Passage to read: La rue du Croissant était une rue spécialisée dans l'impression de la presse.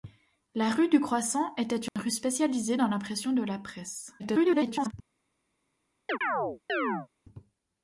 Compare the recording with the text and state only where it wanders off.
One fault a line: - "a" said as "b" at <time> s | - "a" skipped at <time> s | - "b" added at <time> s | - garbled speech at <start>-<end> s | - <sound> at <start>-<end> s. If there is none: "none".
- dropout at 1.9-2.0 s
- garbled speech at 4.2-4.9 s
- chirp at 6.1-7.1 s